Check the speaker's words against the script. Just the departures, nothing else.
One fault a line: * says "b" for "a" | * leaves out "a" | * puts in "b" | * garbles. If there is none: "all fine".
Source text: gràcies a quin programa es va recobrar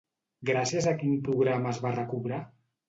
all fine